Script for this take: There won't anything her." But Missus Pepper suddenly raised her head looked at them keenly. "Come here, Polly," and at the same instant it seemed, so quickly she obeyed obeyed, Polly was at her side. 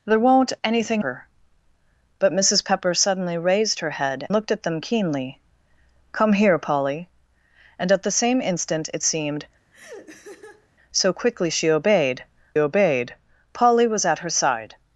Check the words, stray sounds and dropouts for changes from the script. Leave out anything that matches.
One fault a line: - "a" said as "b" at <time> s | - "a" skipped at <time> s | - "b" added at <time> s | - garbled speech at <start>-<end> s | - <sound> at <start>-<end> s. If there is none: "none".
- laugh at 9.7-10.7 s